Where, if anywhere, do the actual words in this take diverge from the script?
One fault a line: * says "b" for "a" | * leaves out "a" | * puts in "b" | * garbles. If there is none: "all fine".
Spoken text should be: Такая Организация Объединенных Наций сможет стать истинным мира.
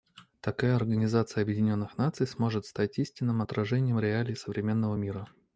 * puts in "отражением реалий современного"